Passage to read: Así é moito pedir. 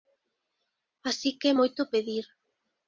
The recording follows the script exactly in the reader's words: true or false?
false